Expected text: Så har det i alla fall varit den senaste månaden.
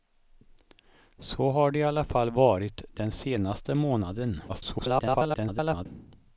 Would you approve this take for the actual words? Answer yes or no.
no